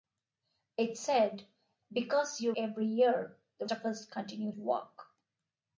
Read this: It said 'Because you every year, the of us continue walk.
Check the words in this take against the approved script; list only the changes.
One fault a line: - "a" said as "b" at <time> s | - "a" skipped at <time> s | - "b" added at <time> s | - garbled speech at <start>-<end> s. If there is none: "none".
none